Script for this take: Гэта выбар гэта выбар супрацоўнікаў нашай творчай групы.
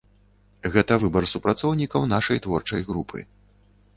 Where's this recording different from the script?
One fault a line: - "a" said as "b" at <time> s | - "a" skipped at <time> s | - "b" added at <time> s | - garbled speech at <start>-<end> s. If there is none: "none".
- "гэта выбар" skipped at 1.3 s